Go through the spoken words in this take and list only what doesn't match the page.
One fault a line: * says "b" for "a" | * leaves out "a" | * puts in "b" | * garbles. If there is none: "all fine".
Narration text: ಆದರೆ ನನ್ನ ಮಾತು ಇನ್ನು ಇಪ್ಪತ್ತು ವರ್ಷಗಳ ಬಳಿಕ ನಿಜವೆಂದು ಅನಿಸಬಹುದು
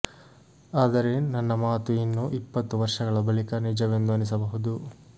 all fine